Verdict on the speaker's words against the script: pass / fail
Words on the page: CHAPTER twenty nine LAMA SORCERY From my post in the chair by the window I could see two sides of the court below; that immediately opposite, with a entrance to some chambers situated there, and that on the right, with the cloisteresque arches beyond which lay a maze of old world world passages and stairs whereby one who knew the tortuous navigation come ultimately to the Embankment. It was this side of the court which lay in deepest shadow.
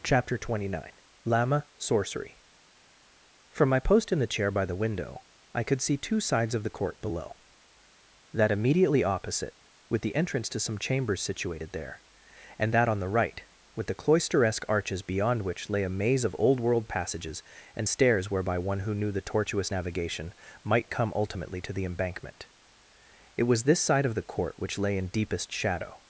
fail